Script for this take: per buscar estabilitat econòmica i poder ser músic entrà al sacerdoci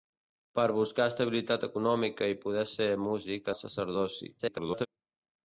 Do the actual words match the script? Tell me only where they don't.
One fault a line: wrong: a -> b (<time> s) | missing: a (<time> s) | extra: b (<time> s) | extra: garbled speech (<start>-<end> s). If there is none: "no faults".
missing: entrà (3.5 s)
extra: garbled speech (4.4-4.9 s)